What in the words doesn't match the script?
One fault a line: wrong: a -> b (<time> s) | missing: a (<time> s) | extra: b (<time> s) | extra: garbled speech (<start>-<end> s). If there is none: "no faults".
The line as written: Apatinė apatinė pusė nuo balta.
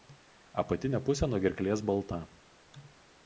missing: apatinė (1.0 s)
extra: gerklės (1.4 s)